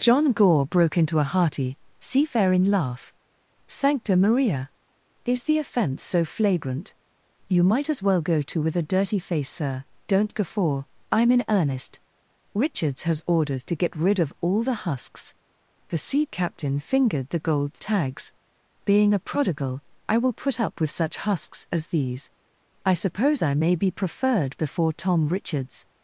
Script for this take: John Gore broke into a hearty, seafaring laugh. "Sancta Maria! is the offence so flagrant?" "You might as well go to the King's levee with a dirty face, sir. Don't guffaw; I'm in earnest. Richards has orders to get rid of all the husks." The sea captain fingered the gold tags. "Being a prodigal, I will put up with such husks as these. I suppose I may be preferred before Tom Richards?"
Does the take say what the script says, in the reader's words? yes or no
no